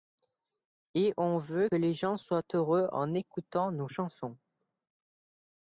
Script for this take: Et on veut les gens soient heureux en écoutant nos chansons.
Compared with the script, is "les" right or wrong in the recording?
right